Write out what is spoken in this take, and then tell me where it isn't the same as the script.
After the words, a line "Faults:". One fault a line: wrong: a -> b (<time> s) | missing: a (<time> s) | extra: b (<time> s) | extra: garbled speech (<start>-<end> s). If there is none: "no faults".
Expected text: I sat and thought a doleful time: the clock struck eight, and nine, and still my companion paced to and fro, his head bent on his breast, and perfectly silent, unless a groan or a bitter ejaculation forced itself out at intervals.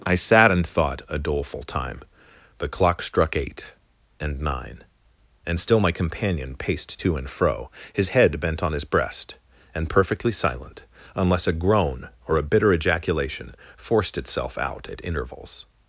I sat and thought a doleful time: the clock struck eight, and nine, and still my companion paced to and fro, his head bent on his breast, and perfectly silent, unless a groan or a bitter ejaculation forced itself out at intervals.
Faults:
no faults